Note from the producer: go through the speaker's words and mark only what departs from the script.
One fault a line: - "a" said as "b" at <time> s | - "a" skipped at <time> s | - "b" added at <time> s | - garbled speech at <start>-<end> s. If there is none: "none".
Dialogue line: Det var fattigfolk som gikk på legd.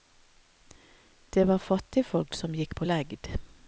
none